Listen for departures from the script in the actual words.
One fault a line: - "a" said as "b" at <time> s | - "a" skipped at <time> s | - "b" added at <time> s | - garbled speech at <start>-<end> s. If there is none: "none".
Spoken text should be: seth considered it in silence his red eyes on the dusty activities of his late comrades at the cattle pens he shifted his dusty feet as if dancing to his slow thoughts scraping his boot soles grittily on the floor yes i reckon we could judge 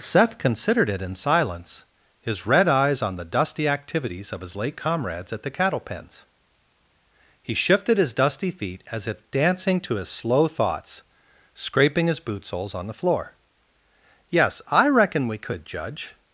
- "grittily" skipped at 12.8 s